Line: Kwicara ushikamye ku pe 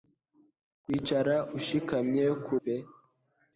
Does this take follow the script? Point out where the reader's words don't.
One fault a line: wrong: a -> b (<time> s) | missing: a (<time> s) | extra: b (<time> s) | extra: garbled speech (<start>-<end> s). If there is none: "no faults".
no faults